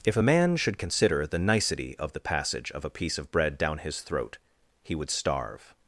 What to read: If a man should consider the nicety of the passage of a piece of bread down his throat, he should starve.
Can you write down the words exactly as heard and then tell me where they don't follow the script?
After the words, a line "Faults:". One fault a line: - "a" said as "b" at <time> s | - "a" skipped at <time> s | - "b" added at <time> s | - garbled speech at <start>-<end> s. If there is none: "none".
If a man should consider the nicety of the passage of a piece of bread down his throat, he would starve.
Faults:
- "should" said as "would" at 4.9 s